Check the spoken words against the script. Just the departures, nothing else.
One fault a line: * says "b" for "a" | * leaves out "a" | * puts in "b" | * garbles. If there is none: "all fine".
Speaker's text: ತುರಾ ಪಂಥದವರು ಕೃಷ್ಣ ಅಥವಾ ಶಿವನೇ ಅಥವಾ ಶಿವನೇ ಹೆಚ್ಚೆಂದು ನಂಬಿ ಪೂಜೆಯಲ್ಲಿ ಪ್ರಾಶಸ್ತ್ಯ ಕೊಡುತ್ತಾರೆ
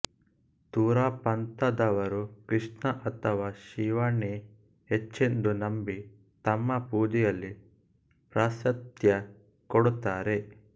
* leaves out "ಅಥವಾ ಶಿವನೇ"
* puts in "ತಮ್ಮ"